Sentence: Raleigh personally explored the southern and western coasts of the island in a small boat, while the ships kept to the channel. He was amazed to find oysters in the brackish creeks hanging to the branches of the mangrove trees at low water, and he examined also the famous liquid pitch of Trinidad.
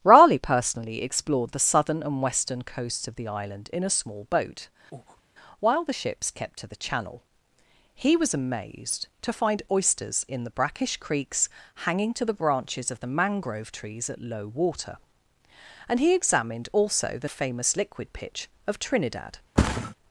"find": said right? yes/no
yes